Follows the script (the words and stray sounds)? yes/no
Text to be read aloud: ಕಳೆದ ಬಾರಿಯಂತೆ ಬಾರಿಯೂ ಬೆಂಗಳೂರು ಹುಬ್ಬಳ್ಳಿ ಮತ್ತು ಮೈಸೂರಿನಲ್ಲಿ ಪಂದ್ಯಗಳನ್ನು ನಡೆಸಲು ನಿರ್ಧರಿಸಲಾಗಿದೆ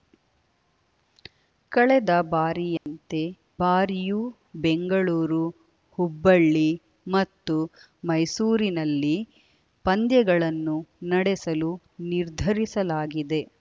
no